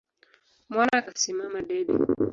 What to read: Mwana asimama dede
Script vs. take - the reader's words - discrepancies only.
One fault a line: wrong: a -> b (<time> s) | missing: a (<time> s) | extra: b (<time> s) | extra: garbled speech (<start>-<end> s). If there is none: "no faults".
no faults